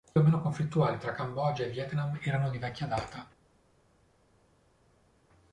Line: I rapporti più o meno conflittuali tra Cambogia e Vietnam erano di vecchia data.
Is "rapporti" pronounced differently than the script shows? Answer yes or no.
yes